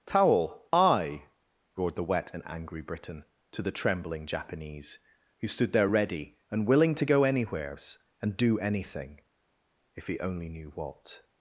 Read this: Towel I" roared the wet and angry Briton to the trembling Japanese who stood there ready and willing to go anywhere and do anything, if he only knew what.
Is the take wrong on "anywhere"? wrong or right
wrong